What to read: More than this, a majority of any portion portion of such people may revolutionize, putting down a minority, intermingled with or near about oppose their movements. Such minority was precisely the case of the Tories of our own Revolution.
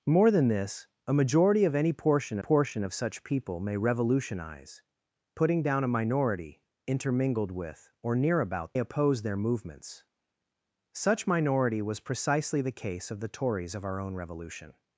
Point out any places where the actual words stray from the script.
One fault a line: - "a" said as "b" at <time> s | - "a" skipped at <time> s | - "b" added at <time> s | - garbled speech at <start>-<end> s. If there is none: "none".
none